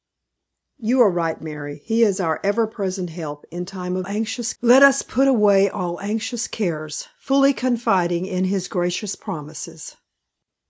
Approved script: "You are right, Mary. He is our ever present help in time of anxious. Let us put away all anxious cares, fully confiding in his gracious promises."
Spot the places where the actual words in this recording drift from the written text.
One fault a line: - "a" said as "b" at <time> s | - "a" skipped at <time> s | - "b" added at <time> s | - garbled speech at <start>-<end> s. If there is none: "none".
none